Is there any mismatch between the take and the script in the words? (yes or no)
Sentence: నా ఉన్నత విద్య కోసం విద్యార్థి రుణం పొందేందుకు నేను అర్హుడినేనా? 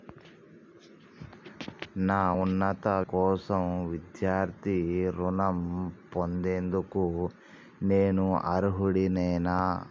yes